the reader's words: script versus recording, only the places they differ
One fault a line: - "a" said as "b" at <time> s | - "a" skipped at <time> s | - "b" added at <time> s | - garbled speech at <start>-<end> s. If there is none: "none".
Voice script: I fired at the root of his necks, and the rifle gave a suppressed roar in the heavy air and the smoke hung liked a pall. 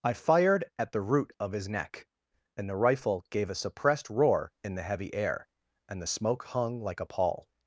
- "necks" said as "neck" at 1.7 s
- "liked" said as "like" at 6.8 s